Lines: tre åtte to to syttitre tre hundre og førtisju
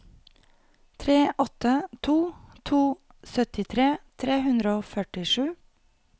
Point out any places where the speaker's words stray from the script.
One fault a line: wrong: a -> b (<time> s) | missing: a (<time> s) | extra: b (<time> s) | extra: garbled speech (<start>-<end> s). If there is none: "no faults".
no faults